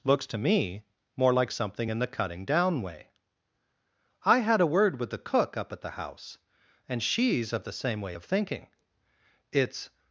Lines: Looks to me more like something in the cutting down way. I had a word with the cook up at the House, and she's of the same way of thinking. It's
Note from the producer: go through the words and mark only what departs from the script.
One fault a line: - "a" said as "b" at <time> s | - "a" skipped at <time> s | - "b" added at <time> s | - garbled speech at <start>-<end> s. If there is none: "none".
none